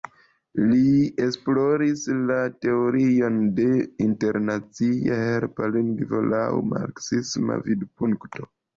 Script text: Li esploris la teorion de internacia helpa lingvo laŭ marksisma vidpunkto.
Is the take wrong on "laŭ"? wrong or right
right